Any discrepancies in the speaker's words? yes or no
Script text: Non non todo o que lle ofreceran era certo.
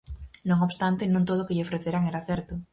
yes